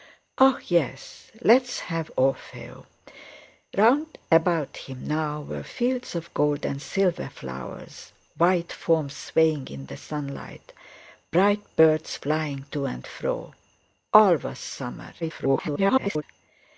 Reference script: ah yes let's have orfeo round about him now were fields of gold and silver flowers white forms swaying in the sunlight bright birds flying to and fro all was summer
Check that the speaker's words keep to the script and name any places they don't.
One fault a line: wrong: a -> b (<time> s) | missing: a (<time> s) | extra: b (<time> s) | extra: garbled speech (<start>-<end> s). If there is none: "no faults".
extra: garbled speech (15.2-16.2 s)